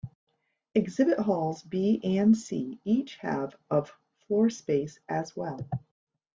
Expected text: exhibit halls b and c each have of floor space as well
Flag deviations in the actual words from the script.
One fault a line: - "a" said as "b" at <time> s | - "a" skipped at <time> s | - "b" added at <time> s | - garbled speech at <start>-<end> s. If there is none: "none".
none